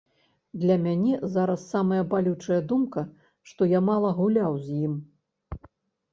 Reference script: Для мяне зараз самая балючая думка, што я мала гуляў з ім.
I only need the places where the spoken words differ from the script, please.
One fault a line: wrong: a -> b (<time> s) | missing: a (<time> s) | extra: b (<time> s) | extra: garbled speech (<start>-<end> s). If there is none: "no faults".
no faults